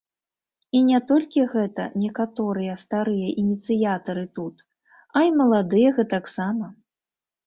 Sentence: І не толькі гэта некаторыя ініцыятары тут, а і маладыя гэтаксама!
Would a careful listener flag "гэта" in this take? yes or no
no